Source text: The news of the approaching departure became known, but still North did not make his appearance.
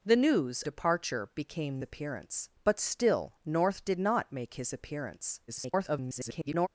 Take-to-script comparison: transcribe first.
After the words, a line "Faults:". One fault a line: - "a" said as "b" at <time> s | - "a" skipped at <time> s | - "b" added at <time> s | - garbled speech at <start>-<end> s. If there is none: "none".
The news departure became appearance, but still North did not make his appearance. [garbled]
Faults:
- "of the approaching" skipped at 0.6 s
- "known" said as "appearance" at 1.8 s
- garbled speech at 5.5-6.7 s